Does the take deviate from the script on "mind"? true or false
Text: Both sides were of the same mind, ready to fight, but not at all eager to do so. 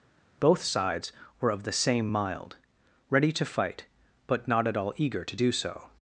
true